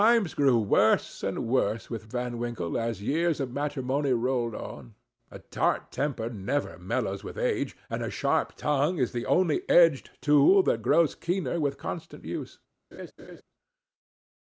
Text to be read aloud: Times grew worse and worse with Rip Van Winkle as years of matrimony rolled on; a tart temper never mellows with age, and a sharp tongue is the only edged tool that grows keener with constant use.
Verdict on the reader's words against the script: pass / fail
fail